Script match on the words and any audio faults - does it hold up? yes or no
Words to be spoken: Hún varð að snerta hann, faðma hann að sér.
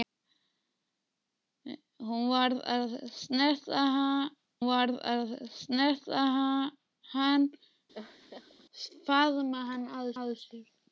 no